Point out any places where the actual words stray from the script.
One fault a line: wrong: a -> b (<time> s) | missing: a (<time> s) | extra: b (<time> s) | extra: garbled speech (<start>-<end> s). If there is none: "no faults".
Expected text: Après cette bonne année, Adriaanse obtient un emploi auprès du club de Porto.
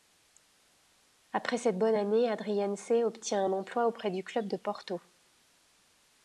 no faults